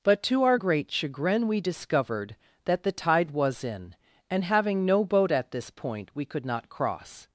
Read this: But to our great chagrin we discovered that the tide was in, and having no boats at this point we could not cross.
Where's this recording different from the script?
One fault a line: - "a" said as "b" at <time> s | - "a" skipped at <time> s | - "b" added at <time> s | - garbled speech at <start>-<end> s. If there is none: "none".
- "boats" said as "boat" at 5.1 s